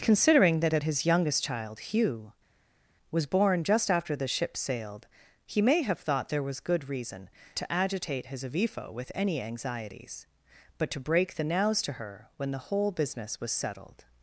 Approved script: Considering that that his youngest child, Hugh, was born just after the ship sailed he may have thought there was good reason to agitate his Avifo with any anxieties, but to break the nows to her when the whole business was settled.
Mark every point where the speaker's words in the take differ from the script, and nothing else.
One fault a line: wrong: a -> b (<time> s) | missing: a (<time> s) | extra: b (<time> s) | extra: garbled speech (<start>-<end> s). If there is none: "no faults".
no faults